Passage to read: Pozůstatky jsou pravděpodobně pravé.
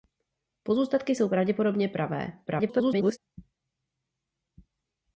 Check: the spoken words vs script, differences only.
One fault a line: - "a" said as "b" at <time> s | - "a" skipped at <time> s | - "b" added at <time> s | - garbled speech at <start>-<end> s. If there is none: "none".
- garbled speech at 2.5-3.2 s